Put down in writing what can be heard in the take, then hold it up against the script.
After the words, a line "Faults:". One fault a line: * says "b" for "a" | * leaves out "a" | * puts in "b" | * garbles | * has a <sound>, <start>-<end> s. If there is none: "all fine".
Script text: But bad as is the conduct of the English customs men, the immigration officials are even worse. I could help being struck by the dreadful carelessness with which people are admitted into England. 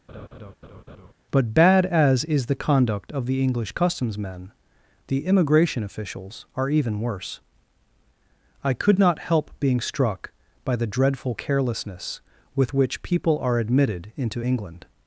But bad as is the conduct of the English customs men, the immigration officials are even worse. I could not help being struck by the dreadful carelessness with which people are admitted into England.
Faults:
* has a laugh, 0.1-1.1 s
* puts in "not"